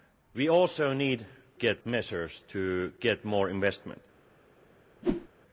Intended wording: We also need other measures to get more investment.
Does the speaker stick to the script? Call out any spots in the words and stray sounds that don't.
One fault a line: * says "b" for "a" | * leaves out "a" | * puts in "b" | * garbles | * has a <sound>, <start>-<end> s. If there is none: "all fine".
* says "get" for "other"
* has a whoosh, 5.0-5.3 s